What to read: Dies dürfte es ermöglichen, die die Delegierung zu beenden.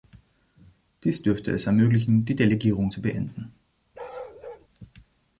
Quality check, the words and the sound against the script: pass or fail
fail